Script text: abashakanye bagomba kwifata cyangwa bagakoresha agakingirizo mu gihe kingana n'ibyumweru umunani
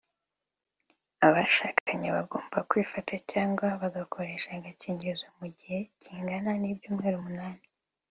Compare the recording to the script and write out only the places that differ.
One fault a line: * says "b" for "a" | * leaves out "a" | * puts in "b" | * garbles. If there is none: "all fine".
all fine